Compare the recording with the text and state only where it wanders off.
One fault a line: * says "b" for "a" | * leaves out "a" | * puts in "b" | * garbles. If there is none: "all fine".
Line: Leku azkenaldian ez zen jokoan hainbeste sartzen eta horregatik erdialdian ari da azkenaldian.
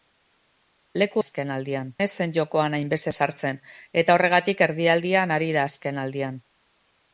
all fine